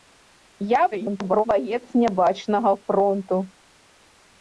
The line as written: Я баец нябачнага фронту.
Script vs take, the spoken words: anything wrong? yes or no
yes